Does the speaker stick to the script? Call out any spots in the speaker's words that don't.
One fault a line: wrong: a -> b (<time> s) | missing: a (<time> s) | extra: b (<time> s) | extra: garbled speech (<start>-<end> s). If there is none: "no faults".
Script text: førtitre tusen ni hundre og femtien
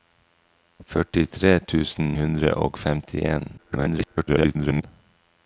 missing: ni (2.1 s)
extra: garbled speech (3.6-4.8 s)